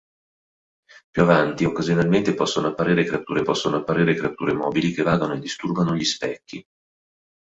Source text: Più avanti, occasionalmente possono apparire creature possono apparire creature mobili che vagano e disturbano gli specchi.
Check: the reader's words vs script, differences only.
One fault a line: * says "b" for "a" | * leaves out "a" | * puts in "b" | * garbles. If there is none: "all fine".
all fine